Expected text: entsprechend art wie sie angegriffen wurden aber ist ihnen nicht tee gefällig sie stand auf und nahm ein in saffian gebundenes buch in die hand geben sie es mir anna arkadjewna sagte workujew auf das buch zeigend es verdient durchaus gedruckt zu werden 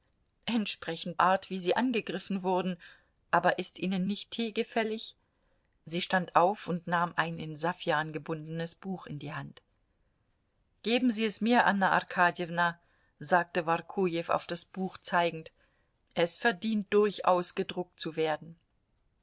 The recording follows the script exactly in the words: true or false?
true